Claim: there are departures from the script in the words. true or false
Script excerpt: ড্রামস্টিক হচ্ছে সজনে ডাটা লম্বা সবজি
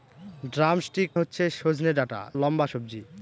false